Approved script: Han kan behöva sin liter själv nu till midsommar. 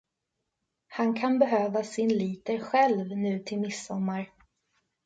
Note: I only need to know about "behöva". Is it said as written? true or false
true